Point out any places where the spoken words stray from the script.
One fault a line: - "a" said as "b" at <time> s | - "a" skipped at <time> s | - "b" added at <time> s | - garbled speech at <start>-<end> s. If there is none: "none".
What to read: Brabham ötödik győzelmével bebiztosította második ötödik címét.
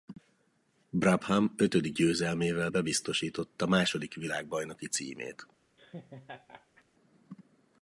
- "ötödik" said as "világbajnoki" at 4.1 s